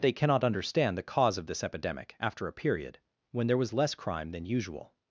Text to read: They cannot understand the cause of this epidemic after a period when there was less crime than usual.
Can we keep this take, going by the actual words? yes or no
yes